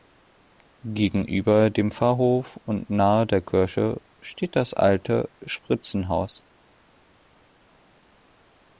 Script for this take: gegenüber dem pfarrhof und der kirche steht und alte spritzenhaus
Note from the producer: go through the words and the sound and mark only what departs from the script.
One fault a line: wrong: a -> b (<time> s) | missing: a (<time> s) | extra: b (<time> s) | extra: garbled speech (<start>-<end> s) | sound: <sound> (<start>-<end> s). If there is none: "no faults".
extra: nahe (2.9 s)
wrong: und -> das (4.5 s)